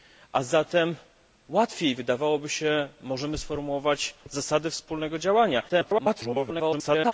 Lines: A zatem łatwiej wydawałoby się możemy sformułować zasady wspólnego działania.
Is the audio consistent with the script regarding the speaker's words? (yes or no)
no